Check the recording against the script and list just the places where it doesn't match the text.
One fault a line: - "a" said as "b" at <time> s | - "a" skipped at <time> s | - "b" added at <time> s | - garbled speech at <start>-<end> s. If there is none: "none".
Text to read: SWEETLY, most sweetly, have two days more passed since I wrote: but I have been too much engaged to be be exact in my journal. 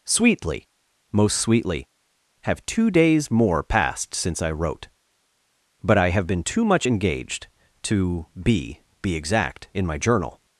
none